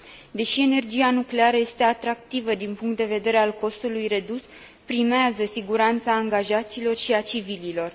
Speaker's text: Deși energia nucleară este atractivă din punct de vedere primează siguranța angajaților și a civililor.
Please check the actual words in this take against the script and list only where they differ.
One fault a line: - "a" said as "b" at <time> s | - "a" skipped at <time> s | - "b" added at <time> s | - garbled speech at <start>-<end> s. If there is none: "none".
- "al costului redus" added at 3.4 s